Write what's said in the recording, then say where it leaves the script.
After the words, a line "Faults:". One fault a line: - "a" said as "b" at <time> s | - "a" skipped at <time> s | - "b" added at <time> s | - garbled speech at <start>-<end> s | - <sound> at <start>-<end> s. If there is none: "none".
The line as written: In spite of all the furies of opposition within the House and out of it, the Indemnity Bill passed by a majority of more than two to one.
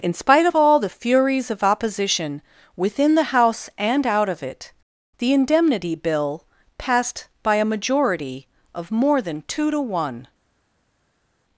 In spite of all the furies of opposition within the House and out of it, the Indemnity Bill passed by a majority of more than two to one.
Faults:
none